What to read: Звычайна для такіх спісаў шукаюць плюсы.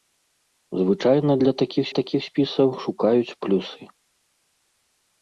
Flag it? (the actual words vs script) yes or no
yes